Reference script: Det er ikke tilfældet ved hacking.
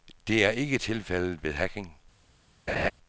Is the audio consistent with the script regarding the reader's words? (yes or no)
yes